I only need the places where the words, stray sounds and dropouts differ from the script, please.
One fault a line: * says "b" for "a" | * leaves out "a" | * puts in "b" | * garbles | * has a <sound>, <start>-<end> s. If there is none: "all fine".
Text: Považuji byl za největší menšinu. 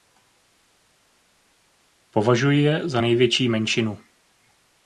* says "je" for "byl"